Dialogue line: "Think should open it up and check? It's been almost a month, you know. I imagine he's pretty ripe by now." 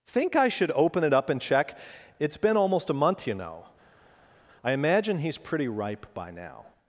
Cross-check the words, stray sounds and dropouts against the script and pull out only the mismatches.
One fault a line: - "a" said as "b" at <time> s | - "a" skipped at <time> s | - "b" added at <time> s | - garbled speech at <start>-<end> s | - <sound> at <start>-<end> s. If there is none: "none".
- "I" added at 0.3 s